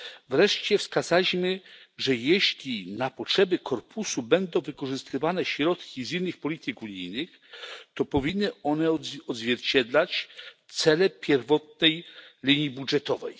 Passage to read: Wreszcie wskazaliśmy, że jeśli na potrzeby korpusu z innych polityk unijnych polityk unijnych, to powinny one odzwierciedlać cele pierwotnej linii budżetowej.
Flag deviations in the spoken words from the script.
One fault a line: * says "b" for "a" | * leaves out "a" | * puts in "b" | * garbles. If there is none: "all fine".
* puts in "będą wykorzystywane środki"
* leaves out "polityk unijnych"